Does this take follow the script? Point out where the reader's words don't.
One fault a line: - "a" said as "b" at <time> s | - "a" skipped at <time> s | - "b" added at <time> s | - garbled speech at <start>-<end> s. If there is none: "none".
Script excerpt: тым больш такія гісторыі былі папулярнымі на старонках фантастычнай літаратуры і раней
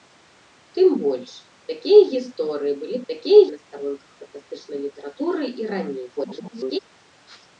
- "папулярнымі" said as "такія" at 3.1 s
- garbled speech at 6.2-6.8 s